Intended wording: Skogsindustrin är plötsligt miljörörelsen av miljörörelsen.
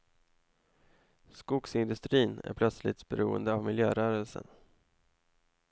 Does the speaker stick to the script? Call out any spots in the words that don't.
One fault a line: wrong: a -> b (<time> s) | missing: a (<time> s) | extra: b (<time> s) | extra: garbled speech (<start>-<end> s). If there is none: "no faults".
wrong: miljörörelsen -> beroende (3.1 s)